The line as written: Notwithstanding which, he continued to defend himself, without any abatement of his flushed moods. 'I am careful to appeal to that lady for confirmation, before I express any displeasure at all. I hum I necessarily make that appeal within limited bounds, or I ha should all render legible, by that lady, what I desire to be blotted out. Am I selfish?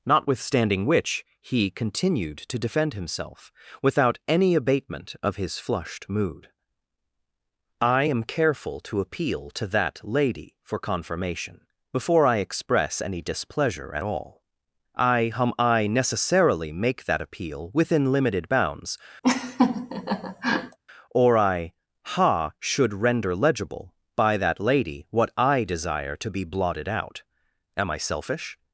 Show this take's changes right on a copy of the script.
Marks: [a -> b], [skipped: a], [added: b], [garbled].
Notwithstanding which, he continued to defend himself, without any abatement of his flushed [moods. -> mood] 'I am careful to appeal to that lady for confirmation, before I express any displeasure at all. I hum I necessarily make that appeal within limited bounds, or I ha should [skipped: all] render legible, by that lady, what I desire to be blotted out. Am I selfish?